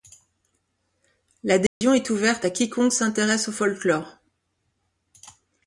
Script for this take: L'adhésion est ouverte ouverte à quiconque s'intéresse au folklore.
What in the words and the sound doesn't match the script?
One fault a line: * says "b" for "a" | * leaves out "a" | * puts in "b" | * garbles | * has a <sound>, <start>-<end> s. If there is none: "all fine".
* has a dropout, 1.7-1.8 s
* leaves out "ouverte"